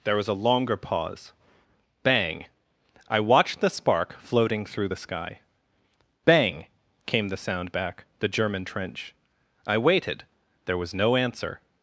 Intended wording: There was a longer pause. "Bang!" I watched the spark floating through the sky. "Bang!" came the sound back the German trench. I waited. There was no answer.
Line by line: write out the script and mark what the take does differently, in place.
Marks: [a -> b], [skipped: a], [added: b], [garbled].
There was a longer pause. "Bang!" I watched the spark floating through the sky. "Bang!" came the sound back the German trench. I waited. There was no answer.